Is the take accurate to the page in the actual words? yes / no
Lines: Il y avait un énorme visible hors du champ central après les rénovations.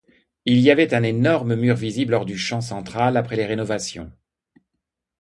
no